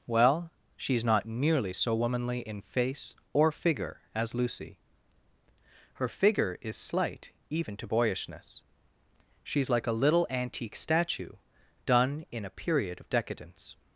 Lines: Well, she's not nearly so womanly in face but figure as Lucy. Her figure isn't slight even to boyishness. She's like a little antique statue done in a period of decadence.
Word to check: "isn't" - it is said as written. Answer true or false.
false